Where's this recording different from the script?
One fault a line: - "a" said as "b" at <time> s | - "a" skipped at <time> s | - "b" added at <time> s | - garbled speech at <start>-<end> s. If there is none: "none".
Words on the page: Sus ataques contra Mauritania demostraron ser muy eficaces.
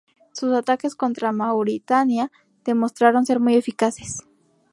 none